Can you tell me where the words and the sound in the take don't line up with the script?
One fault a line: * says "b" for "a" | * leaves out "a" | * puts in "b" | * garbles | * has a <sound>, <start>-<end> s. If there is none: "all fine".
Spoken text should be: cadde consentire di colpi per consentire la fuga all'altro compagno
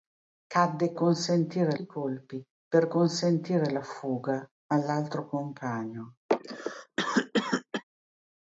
* has a cough, 6.3-7.8 s